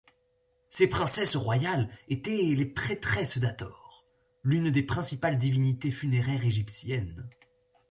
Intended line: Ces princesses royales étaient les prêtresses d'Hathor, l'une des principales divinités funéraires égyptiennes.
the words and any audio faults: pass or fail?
pass